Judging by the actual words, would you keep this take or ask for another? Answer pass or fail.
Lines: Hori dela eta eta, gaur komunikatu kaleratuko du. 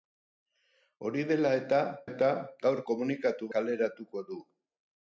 pass